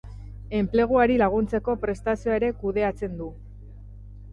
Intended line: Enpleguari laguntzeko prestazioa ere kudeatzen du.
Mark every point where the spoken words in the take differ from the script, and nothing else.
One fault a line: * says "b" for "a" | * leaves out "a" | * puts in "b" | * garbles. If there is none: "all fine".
all fine